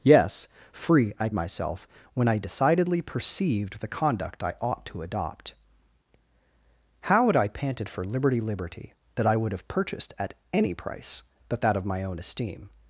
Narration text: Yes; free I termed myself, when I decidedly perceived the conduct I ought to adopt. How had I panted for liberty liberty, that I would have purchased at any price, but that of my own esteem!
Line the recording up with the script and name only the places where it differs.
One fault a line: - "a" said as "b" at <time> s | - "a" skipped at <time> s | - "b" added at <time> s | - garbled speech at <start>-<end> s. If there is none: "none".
- "termed" skipped at 1.3 s